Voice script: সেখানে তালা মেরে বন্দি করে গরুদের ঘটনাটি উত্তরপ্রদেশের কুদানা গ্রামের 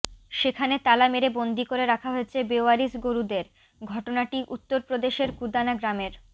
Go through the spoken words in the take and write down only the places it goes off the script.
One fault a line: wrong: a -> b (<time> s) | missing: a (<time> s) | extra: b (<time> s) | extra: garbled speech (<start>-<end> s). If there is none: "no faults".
extra: রাখা হয়েছে বেওয়ারিশ (1.9 s)